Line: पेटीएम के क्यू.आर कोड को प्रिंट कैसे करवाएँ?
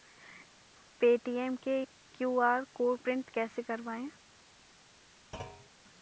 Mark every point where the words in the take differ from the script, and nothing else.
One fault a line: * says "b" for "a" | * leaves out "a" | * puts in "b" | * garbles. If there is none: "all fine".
* leaves out "को"